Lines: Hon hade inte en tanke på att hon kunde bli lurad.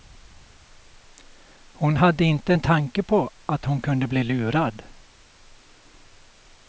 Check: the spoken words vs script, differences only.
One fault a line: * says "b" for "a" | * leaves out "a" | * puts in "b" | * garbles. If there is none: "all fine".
all fine